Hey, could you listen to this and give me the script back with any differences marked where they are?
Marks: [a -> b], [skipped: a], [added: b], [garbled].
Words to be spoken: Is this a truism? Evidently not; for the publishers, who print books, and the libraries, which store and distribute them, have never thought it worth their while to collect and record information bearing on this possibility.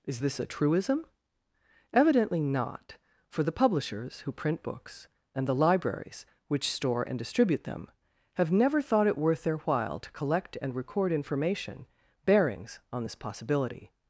Is this a truism? Evidently not; for the publishers, who print books, and the libraries, which store and distribute them, have never thought it worth their while to collect and record information [bearing -> bearings] on this possibility.